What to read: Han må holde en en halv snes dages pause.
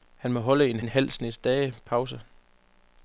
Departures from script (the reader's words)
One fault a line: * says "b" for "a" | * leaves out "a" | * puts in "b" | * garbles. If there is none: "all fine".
all fine